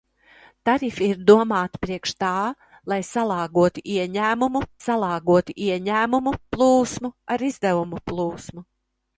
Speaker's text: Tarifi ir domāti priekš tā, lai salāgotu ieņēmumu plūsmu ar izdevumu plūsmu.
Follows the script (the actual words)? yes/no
no